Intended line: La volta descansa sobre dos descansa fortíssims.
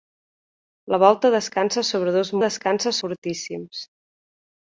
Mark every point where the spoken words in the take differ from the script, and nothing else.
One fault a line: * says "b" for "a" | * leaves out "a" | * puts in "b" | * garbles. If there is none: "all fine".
all fine